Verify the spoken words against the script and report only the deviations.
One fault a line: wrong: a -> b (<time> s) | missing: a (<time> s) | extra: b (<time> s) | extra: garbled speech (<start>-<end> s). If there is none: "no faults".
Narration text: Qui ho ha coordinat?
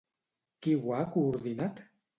no faults